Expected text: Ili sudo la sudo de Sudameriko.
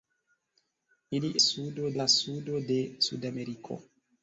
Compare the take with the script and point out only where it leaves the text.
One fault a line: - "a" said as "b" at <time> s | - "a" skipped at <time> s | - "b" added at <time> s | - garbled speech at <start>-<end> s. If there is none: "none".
none